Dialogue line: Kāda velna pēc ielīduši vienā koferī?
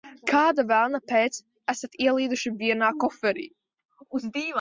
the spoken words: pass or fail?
fail